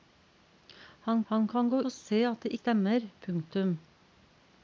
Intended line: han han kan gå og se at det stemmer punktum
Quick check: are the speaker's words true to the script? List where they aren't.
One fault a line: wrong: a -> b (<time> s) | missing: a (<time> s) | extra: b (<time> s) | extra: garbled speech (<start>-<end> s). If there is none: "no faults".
no faults